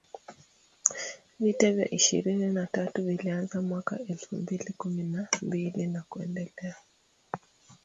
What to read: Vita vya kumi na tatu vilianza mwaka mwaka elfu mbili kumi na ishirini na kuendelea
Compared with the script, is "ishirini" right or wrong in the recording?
wrong